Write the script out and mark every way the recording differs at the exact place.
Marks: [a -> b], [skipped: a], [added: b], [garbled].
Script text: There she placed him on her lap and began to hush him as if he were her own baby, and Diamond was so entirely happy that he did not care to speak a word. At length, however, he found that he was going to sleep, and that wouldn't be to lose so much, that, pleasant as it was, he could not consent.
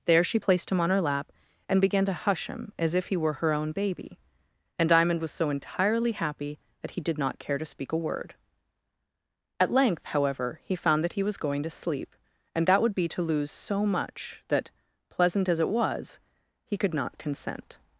There she placed him on her lap and began to hush him as if he were her own baby, and Diamond was so entirely happy that he did not care to speak a word. At length, however, he found that he was going to sleep, and that [wouldn't -> would] be to lose so much, that, pleasant as it was, he could not consent.